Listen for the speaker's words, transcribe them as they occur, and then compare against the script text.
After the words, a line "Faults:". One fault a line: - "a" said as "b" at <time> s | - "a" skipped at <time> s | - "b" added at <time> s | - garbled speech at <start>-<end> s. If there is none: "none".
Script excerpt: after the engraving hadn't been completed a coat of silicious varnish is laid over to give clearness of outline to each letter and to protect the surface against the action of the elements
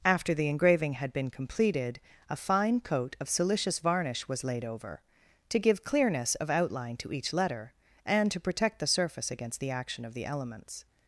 after the engraving had been completed a fine coat of silicious varnish was laid over to give clearness of outline to each letter and to protect the surface against the action of the elements
Faults:
- "hadn't" said as "had" at 0.9 s
- "fine" added at 2.4 s
- "is" said as "was" at 4.3 s